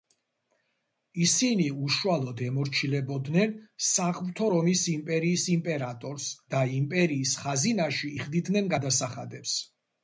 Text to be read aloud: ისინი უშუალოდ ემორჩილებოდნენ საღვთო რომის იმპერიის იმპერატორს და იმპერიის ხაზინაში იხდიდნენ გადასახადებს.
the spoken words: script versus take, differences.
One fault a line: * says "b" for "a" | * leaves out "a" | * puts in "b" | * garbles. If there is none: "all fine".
all fine